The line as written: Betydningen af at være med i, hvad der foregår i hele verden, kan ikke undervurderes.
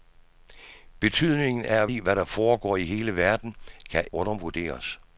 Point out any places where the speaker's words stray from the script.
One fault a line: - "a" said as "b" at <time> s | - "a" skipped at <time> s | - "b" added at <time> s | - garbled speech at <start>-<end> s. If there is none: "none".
- "være med" skipped at 1.9 s
- "ikke" skipped at 4.1 s